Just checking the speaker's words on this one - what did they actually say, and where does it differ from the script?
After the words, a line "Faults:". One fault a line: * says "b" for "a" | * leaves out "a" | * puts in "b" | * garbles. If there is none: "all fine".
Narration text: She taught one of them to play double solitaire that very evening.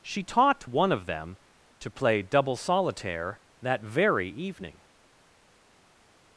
She taught one of them to play double solitaire that very evening.
Faults:
all fine